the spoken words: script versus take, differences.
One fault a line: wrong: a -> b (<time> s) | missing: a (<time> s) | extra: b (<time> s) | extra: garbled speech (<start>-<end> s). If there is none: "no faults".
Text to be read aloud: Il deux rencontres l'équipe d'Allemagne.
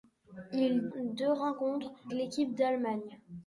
no faults